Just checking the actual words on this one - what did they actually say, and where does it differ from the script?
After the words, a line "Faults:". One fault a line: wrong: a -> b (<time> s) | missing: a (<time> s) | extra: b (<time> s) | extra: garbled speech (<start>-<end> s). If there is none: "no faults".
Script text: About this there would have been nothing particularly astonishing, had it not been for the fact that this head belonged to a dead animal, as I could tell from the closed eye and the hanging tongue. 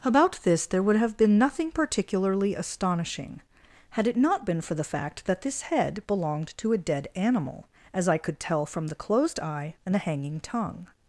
About this there would have been nothing particularly astonishing, had it not been for the fact that this head belonged to a dead animal, as I could tell from the closed eye and the hanging tongue.
Faults:
no faults